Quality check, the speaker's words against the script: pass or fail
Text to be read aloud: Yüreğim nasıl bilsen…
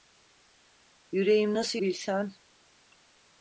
pass